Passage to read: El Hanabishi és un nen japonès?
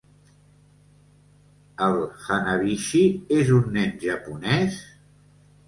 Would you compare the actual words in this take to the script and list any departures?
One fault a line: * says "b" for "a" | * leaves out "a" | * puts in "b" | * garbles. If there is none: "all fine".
all fine